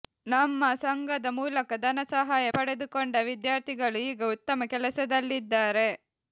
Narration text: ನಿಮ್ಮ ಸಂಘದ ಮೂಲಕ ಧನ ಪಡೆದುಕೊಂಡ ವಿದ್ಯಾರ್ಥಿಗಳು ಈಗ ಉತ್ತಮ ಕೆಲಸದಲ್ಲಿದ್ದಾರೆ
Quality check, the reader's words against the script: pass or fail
fail